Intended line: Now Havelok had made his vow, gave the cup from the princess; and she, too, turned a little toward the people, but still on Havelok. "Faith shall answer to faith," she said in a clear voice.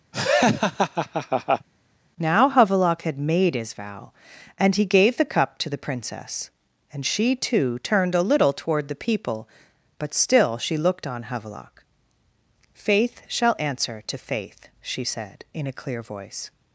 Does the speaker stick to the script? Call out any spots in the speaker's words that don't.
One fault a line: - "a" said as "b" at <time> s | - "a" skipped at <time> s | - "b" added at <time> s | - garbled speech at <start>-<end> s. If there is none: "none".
- "and he" added at 4.6 s
- "from" said as "to" at 5.6 s
- "she looked" added at 10.6 s